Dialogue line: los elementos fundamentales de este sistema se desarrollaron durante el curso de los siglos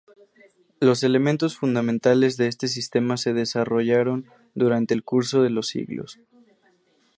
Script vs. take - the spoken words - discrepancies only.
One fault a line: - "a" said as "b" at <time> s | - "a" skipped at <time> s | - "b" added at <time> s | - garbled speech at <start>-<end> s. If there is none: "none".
none